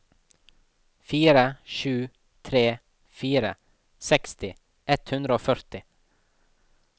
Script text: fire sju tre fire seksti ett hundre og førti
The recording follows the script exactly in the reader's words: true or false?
true